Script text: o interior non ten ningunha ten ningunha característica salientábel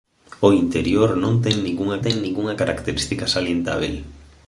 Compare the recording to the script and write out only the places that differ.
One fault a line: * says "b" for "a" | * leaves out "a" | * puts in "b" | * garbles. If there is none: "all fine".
all fine